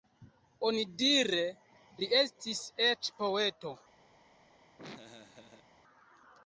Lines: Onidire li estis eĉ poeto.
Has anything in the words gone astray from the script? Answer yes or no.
no